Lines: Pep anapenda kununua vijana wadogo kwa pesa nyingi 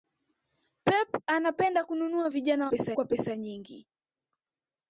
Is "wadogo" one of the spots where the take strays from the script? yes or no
yes